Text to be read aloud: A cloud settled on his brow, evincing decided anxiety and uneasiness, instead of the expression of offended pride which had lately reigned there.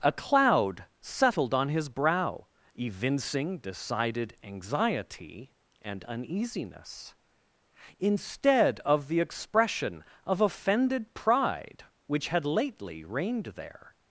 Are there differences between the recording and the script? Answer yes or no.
no